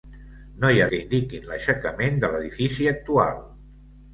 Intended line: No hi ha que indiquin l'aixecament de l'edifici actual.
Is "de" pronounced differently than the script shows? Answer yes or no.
no